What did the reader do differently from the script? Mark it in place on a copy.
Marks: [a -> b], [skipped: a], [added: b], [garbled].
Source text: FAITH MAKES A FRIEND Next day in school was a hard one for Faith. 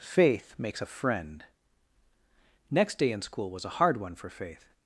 FAITH MAKES A FRIEND Next day in school was a hard one for Faith.